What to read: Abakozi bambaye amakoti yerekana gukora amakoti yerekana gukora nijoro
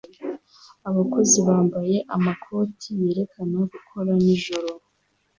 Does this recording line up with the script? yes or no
no